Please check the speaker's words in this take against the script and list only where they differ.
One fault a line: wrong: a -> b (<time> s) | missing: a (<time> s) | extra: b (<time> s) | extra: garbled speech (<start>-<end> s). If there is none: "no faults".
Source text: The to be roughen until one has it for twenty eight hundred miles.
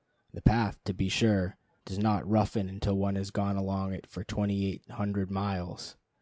extra: path (0.4 s)
extra: sure does not (1.1 s)
extra: gone along (3.3 s)